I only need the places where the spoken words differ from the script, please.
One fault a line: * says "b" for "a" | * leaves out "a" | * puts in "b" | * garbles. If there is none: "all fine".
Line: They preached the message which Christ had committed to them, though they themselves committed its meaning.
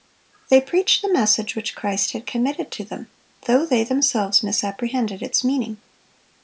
* says "misapprehended" for "committed"